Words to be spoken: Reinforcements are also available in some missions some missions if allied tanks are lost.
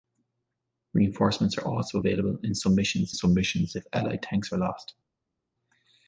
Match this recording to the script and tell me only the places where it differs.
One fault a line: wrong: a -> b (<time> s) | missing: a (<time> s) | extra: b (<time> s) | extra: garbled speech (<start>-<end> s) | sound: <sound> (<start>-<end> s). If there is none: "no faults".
no faults